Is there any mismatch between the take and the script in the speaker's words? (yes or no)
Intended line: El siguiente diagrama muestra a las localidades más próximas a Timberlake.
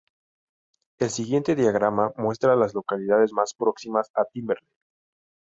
no